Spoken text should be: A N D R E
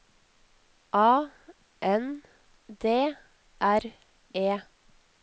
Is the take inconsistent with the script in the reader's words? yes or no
no